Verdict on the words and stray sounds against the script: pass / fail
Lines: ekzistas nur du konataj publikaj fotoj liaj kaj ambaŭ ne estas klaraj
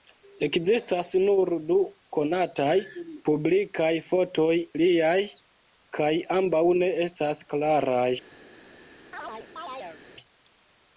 fail